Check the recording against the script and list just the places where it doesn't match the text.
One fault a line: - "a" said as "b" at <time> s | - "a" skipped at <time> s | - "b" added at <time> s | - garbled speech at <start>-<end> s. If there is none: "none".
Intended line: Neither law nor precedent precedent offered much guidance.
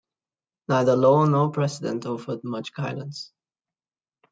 - "precedent" skipped at 2.0 s